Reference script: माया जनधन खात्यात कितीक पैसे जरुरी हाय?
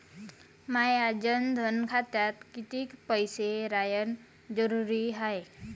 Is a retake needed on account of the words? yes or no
yes